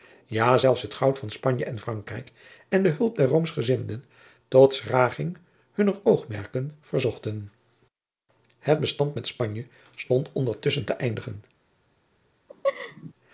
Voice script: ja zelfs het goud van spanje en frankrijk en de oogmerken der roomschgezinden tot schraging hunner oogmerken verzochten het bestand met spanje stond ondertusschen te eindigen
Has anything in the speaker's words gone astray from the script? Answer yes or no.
yes